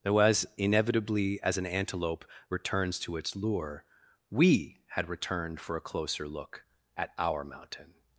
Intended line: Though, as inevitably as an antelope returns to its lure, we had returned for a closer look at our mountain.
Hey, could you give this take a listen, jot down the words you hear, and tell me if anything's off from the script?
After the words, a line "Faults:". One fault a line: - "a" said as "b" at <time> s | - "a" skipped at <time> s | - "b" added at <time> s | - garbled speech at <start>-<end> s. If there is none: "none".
Though, as inevitably as an antelope returns to its lure, we had returned for a closer look at our mountain.
Faults:
none